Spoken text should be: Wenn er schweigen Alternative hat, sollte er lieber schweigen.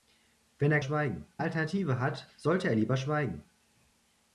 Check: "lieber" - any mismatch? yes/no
no